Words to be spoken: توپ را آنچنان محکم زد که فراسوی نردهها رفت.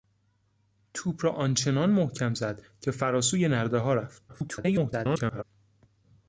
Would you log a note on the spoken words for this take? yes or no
yes